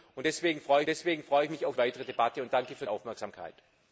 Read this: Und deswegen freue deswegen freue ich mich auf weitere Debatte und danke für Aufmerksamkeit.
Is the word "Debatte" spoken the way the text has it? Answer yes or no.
yes